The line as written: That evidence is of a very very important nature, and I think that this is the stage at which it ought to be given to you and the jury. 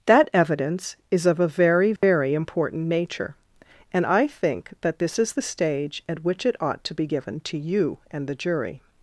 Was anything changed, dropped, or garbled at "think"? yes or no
no